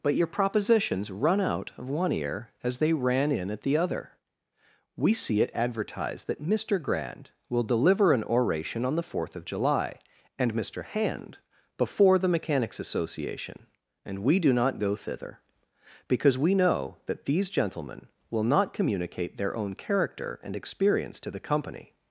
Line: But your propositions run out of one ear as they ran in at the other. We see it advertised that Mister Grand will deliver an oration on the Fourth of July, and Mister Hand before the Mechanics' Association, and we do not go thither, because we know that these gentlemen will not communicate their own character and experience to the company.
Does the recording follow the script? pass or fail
pass